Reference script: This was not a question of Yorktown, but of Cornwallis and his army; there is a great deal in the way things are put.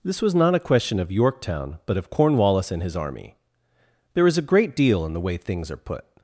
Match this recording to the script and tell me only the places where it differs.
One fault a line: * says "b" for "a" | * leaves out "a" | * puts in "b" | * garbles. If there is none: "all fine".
all fine